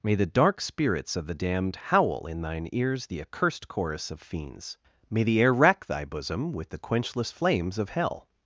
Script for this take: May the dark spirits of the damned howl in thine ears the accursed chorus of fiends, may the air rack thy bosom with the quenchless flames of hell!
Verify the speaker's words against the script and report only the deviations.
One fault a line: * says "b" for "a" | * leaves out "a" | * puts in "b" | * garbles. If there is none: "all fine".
all fine